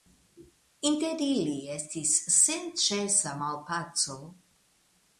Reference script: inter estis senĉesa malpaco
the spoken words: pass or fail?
fail